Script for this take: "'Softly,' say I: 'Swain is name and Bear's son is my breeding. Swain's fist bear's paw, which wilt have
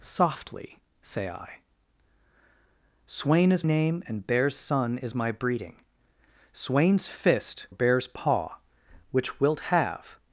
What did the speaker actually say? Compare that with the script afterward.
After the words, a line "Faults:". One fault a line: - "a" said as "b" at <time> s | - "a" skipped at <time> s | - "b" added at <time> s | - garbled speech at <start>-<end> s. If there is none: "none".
"'Softly,' say I: 'Swain is name and Bear's son is my breeding. Swain's fist bear's paw, which wilt have
Faults:
none